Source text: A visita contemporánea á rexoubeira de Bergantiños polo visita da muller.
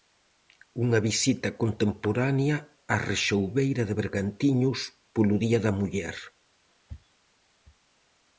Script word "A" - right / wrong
wrong